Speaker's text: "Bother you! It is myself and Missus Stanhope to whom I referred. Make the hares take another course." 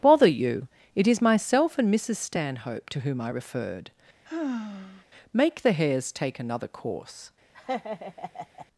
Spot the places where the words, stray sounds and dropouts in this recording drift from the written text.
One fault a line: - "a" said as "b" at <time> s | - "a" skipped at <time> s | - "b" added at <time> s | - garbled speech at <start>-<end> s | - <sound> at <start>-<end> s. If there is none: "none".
- sigh at 4.2-5.0 s
- laugh at 7.5-8.7 s